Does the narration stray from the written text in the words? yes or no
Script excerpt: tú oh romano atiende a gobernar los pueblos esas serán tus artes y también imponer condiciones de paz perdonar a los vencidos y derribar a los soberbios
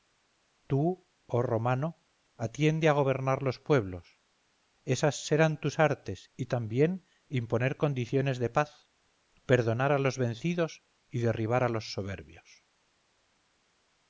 no